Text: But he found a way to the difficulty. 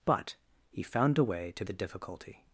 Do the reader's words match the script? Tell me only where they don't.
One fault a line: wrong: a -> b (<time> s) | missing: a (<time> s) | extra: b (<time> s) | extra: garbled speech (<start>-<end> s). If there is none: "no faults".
no faults